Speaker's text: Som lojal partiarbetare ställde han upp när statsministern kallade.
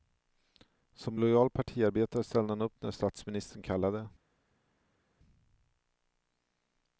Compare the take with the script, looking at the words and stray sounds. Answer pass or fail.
pass